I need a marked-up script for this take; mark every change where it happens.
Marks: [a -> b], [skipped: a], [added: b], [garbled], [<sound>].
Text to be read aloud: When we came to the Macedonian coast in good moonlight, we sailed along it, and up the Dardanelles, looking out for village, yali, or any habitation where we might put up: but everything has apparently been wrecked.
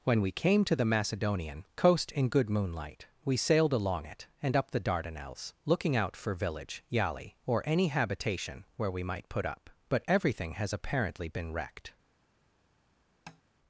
When we came to the Macedonian coast in good moonlight, we sailed along it, and up the Dardanelles, looking out for village, yali, or any habitation where we might put up: but everything has apparently been wrecked. [tap]